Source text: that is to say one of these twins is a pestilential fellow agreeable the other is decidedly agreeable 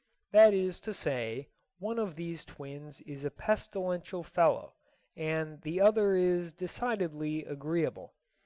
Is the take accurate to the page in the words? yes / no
no